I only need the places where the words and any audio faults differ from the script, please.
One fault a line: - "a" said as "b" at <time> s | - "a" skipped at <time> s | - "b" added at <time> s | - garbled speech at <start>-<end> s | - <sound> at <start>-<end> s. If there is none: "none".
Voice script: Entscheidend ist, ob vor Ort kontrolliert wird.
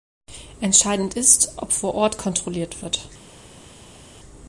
none